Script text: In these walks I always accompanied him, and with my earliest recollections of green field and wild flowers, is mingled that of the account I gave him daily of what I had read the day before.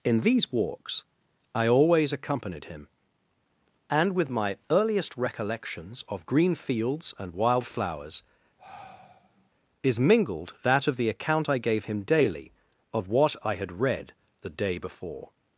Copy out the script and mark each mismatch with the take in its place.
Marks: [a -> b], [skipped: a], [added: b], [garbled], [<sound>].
In these walks I always accompanied him, and with my earliest recollections of green [field -> fields] and wild flowers, [sigh] is mingled that of the account I gave him daily of what I had read the day before.